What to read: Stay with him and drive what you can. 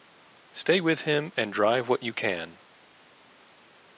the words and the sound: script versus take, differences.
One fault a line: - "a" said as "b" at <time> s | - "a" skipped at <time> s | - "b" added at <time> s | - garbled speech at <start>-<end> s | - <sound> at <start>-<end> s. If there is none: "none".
none